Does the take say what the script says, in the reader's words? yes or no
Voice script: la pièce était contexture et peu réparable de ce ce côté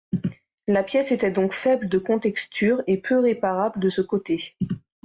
no